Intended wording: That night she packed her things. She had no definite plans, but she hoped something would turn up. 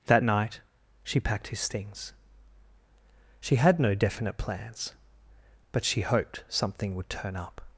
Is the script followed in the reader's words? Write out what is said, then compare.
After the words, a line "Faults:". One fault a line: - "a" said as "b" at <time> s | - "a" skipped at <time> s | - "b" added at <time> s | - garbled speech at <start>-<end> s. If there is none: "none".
That night she packed his things. She had no definite plans, but she hoped something would turn up.
Faults:
- "her" said as "his" at 1.5 s